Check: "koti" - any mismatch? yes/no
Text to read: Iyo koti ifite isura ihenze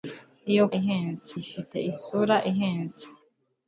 yes